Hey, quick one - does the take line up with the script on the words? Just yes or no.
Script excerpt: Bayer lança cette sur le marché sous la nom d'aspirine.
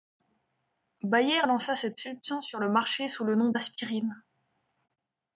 no